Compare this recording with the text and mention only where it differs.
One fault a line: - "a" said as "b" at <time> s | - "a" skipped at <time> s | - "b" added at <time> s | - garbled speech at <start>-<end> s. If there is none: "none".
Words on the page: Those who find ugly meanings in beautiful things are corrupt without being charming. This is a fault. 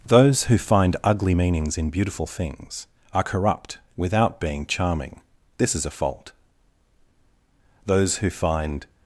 - "Those who find" added at 7.8 s